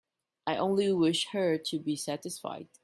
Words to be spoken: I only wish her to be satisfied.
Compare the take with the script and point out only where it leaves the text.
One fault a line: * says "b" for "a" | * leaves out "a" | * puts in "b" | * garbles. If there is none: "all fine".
all fine